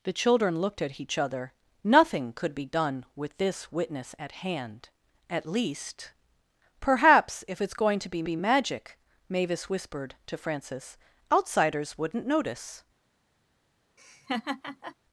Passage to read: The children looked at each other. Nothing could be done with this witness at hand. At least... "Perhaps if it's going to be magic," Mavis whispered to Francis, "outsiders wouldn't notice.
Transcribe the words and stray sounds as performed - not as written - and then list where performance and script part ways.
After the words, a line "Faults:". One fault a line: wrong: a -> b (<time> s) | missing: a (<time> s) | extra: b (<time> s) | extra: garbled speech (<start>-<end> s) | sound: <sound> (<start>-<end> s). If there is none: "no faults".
The children looked at each other. Nothing could be done with this witness at hand. At least... "Perhaps if it's going to be be magic," Mavis whispered to Francis, "outsiders wouldn't notice.
Faults:
extra: be (8.2 s)
sound: laugh (14.0-15.0 s)